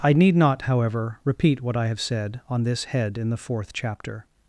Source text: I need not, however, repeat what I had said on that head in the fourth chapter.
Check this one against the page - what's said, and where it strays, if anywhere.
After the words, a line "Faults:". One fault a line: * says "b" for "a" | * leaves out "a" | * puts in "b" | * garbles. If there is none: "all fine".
I need not, however, repeat what I have said on this head in the fourth chapter.
Faults:
* says "have" for "had"
* says "this" for "that"